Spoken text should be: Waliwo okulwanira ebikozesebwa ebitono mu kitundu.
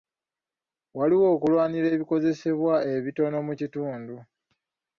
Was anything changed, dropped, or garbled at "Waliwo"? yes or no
no